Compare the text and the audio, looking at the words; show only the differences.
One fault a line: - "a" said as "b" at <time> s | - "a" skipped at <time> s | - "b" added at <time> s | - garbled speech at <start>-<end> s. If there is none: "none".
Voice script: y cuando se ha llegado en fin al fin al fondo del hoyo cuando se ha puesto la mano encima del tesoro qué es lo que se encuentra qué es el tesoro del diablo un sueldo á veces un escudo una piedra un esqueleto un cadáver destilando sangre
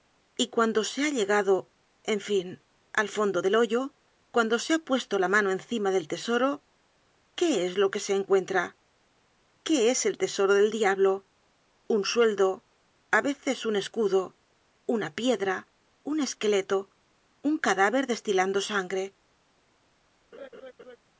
- "fin al" skipped at 3.1 s